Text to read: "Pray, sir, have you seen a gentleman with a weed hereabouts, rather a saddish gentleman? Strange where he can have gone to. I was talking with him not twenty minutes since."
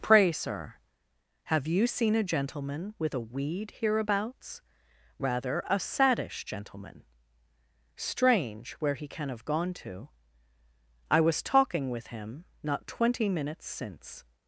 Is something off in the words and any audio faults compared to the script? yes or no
no